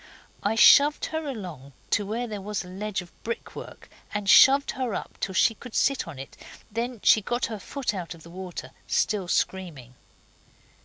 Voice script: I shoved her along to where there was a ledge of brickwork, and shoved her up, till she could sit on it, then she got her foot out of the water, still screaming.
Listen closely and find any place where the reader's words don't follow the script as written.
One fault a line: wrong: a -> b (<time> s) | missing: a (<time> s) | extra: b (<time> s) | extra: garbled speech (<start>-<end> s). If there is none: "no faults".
no faults